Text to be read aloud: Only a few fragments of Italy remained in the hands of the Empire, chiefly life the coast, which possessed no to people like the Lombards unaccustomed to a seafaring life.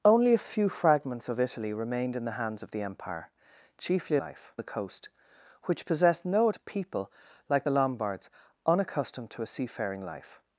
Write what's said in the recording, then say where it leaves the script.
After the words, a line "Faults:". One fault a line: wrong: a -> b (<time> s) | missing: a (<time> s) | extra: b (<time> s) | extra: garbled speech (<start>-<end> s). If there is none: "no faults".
Only a few fragments of Italy remained in the hands of the Empire, chiefly life the coast, which possessed no to people like the Lombards unaccustomed to a seafaring life.
Faults:
no faults